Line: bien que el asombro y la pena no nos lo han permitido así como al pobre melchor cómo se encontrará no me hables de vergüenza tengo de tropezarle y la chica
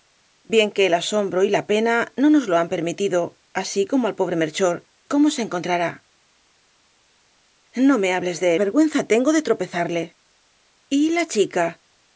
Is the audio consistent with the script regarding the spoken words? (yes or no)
yes